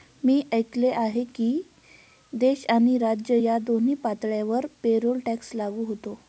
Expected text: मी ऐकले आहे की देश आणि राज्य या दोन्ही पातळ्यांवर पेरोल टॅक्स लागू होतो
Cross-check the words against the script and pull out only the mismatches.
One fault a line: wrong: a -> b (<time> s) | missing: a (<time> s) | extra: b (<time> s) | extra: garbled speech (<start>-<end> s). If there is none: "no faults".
no faults